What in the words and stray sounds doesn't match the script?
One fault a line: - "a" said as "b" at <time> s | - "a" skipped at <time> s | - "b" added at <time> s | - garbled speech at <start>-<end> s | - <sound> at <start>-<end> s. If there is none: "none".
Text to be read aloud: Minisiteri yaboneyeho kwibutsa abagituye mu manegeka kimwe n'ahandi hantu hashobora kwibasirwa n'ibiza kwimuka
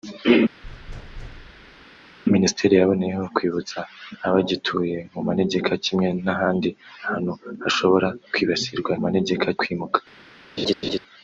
- thud at 0.6-1.9 s
- "n'ibiza" said as "manegeka" at 9.0 s
- laugh at 10.6-11.0 s